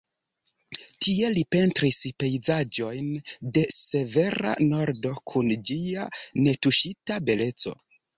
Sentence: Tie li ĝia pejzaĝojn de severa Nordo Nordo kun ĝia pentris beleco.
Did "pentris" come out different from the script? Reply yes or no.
yes